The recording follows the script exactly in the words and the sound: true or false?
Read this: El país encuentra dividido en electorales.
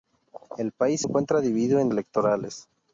true